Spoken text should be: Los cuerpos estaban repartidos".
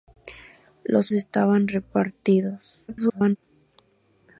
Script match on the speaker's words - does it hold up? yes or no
no